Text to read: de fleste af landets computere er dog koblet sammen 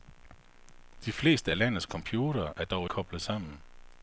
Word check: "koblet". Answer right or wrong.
right